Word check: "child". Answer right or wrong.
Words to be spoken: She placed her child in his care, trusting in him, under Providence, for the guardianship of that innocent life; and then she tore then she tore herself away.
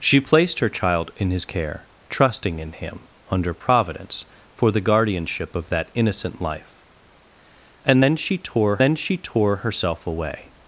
right